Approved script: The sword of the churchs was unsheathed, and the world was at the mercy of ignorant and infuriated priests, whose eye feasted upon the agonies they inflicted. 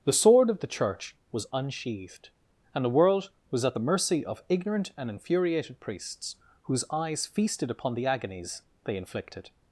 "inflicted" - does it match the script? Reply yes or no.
yes